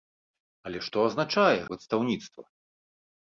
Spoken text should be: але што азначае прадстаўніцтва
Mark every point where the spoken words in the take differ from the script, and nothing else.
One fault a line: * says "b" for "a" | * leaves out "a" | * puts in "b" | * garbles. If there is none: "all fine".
all fine